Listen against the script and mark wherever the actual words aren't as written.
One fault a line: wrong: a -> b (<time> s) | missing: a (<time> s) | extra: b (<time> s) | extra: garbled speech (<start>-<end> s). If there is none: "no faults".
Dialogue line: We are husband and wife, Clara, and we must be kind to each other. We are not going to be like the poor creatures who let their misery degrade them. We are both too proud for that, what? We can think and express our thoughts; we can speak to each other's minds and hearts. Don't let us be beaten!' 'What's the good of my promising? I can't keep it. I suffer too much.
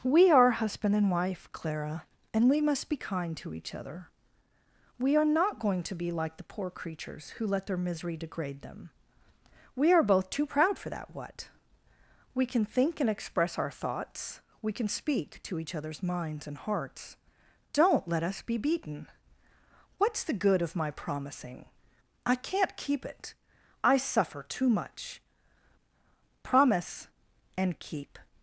extra: Promise and keep (26.4 s)